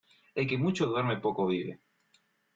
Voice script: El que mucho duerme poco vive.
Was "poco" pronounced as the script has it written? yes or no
yes